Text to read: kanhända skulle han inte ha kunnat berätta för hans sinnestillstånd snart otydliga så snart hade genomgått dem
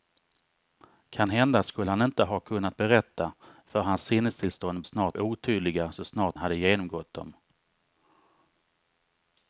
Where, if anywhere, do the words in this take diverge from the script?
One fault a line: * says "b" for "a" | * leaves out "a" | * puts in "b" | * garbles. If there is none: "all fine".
all fine